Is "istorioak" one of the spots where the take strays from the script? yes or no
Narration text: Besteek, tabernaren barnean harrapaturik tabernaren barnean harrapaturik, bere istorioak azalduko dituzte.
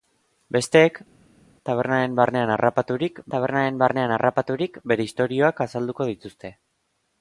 no